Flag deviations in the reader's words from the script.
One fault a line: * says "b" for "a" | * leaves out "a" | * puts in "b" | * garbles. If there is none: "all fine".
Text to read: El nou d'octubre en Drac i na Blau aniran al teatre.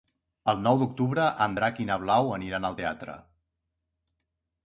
all fine